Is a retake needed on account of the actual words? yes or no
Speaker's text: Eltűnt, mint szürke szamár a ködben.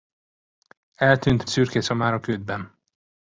yes